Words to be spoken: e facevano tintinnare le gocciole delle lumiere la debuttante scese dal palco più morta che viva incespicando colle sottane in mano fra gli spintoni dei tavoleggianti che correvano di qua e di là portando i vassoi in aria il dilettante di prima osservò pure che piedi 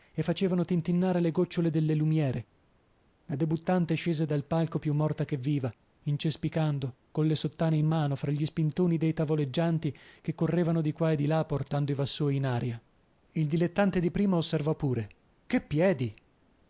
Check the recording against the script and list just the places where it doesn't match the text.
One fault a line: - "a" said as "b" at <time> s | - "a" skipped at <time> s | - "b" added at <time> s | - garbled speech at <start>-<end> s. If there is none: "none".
none